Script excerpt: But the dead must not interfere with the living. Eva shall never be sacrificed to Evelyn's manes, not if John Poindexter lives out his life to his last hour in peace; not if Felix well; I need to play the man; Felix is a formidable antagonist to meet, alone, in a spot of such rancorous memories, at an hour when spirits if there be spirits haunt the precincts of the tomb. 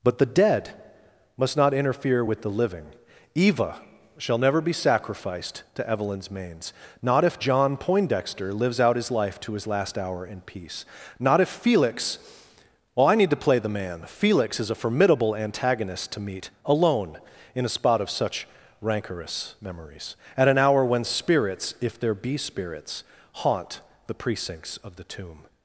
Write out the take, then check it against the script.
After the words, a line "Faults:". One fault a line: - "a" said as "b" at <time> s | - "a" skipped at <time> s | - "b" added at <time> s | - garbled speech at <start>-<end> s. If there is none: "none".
But the dead must not interfere with the living. Eva shall never be sacrificed to Evelyn's manes, not if John Poindexter lives out his life to his last hour in peace; not if Felix well; I need to play the man; Felix is a formidable antagonist to meet, alone, in a spot of such rancorous memories, at an hour when spirits if there be spirits haunt the precincts of the tomb.
Faults:
none